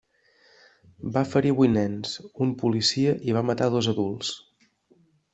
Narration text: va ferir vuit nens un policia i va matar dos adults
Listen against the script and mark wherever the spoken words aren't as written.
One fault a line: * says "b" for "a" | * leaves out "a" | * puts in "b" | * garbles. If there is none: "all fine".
all fine